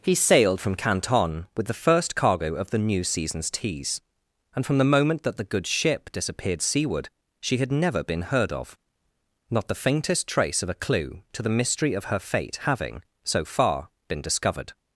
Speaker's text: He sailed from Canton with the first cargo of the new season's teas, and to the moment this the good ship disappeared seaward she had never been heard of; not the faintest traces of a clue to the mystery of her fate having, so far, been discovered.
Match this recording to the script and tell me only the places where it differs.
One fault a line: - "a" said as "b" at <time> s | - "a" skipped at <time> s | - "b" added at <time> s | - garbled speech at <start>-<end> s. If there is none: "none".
- "to" said as "from" at 4.7 s
- "this" said as "that" at 5.2 s
- "traces" said as "trace" at 10.3 s